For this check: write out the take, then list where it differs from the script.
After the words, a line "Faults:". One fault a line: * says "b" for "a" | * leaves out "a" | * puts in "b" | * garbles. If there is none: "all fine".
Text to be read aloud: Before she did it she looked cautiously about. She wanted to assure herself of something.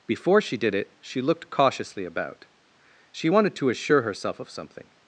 Before she did it she looked cautiously about. She wanted to assure herself of something.
Faults:
all fine